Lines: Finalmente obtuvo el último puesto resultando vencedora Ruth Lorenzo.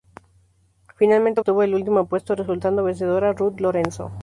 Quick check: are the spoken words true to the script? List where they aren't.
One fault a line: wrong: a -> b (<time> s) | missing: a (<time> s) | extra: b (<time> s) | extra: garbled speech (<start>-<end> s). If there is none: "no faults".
no faults